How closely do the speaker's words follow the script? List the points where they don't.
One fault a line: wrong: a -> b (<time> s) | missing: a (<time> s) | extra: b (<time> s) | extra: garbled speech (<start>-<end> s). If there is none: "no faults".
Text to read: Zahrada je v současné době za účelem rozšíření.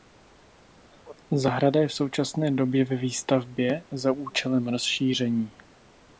extra: ve výstavbě (2.9 s)